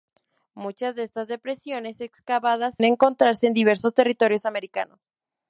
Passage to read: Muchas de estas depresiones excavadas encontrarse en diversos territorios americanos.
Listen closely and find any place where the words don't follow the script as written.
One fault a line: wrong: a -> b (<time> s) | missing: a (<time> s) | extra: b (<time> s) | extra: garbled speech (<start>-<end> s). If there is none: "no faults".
no faults